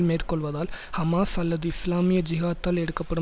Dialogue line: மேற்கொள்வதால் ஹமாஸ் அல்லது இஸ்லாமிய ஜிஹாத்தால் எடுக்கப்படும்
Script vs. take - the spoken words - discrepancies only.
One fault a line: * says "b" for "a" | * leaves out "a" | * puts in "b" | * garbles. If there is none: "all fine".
all fine